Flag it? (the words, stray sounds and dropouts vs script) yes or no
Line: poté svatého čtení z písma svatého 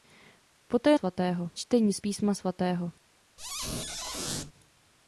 yes